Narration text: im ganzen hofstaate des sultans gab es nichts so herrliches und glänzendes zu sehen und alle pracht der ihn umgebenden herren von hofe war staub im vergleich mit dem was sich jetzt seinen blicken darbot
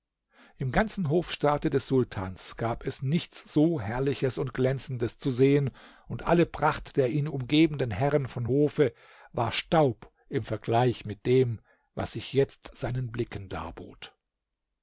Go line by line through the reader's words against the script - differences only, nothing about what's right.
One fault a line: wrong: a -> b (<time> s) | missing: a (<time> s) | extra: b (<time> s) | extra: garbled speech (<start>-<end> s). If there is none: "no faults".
no faults